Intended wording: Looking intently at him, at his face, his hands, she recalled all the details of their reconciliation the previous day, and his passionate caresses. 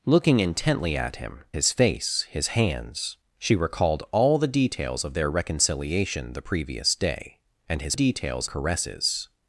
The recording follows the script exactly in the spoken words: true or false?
false